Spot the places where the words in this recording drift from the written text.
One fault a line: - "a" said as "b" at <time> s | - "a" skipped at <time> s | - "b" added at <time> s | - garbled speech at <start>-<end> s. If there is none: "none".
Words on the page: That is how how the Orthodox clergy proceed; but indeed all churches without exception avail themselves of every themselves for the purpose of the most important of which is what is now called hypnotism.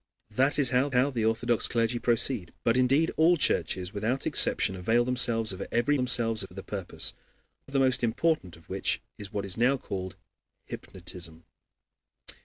none